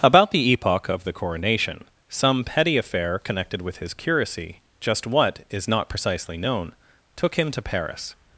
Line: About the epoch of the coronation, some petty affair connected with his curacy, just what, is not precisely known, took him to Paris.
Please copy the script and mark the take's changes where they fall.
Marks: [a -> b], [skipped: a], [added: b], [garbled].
About the epoch of the coronation, some petty affair connected with his curacy, just what, is not precisely known, took him to Paris.